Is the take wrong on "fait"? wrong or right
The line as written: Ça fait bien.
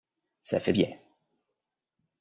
right